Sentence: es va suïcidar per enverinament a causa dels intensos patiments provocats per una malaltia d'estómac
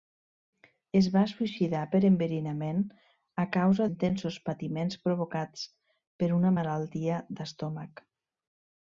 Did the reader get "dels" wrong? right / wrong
wrong